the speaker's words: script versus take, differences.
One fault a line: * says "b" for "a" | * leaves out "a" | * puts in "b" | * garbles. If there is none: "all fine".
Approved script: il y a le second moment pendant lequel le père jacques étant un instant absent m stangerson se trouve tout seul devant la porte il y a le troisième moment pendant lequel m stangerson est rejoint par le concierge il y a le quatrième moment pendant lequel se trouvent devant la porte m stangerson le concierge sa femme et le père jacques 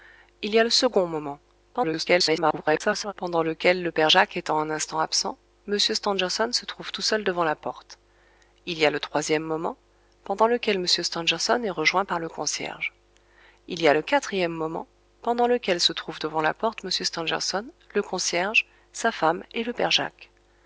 * garbles